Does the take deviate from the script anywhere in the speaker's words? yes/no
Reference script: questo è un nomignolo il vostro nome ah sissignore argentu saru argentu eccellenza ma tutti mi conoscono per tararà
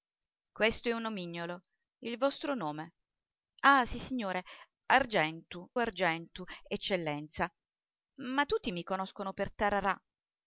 yes